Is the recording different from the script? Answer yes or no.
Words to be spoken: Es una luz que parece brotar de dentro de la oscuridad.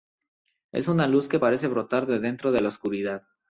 no